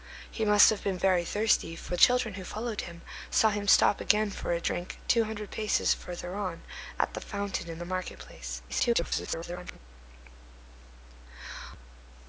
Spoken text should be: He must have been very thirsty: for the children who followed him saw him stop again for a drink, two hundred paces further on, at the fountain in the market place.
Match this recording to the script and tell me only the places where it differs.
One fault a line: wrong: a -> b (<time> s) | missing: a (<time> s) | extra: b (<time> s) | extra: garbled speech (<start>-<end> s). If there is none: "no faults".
missing: the (1.9 s)
extra: garbled speech (8.7-9.8 s)